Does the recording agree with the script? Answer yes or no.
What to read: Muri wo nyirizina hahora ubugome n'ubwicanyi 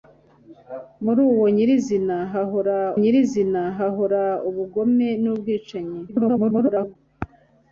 no